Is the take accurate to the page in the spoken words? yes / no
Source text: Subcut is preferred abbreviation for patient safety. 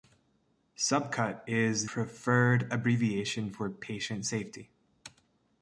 yes